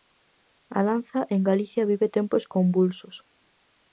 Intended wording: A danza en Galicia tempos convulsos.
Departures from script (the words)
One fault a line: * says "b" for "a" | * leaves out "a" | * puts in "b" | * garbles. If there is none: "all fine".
* puts in "vive"